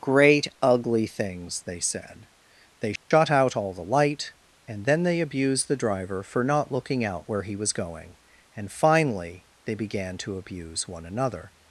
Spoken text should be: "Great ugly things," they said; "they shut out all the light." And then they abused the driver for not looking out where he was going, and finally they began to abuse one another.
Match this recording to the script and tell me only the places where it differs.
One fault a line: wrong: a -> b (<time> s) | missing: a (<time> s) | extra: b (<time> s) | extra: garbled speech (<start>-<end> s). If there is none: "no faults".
no faults